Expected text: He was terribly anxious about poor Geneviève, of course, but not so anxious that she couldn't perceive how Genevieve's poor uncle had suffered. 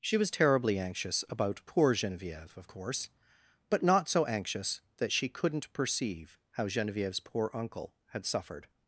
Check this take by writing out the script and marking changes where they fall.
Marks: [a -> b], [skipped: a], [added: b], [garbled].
[He -> She] was terribly anxious about poor Geneviève, of course, but not so anxious that she couldn't perceive how Genevieve's poor uncle had suffered.